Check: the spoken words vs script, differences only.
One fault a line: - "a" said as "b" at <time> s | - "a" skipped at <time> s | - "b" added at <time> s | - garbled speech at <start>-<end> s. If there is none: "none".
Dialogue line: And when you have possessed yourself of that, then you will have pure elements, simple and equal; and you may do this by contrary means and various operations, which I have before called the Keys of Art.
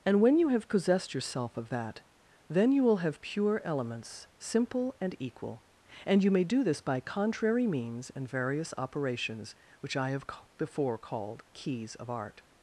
- "the" skipped at 11.4 s